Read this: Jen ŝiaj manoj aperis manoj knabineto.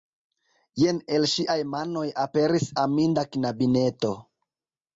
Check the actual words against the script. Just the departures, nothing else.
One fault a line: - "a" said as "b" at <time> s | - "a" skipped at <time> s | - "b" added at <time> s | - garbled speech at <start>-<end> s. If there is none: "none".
- "el" added at 1.2 s
- "manoj" said as "aminda" at 2.9 s